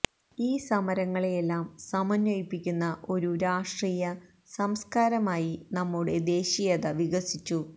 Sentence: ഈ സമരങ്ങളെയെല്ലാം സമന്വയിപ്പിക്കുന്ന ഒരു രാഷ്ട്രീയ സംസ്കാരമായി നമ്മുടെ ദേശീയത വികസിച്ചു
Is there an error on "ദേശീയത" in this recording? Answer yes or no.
no